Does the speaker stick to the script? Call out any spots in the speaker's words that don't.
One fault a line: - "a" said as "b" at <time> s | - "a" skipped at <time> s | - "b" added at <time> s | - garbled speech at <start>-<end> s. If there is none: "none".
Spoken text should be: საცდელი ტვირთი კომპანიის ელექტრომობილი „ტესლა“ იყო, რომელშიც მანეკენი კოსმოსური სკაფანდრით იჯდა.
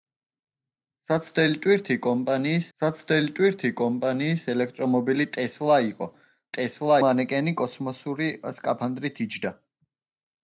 - "საცდელი ტვირთი კომპანიის" added at 2.8 s
- "რომელშიც" said as "ტესლა" at 6.5 s